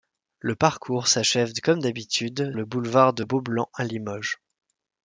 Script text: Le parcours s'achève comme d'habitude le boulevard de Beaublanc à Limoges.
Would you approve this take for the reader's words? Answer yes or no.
yes